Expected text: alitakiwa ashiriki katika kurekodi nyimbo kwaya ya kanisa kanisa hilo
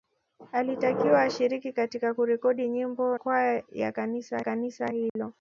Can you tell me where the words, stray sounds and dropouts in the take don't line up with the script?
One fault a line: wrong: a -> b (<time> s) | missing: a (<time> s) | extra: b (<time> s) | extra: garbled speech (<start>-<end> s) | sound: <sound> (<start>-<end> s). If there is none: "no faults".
sound: dropout (5.1-5.2 s)